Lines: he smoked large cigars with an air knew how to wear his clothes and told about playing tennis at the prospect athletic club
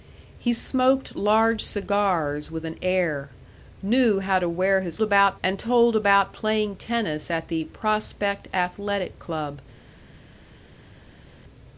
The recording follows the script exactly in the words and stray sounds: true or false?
false